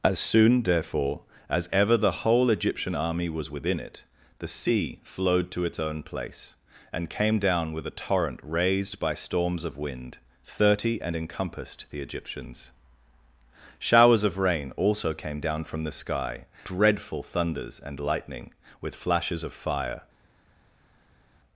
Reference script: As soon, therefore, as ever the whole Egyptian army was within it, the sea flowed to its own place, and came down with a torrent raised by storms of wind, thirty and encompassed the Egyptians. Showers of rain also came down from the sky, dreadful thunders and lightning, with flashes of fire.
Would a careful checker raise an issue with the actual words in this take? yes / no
no